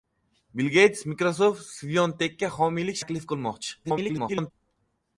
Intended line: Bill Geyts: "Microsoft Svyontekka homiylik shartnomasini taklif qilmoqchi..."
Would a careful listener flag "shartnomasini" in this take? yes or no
yes